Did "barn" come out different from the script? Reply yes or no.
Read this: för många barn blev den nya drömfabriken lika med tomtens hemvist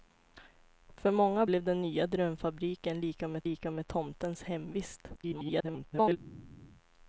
yes